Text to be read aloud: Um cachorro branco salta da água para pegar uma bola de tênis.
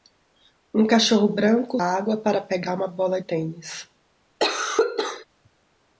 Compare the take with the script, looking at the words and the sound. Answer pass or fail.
fail